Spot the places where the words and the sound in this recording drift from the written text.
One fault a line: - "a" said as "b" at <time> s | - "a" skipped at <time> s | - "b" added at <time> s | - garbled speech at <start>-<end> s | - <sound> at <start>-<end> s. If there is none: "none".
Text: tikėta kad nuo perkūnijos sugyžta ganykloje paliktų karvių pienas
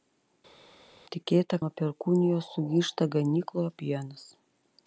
- "kad" skipped at 1.6 s
- "paliktų karvių" skipped at 3.8 s